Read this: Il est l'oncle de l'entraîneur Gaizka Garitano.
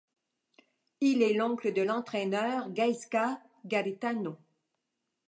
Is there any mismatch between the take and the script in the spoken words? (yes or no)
no